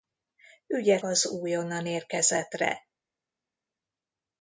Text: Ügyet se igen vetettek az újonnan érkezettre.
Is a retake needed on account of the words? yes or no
yes